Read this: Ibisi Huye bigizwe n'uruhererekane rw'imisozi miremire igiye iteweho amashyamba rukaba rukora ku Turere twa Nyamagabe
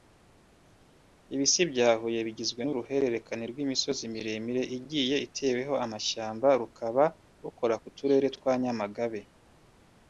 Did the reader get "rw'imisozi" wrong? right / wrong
right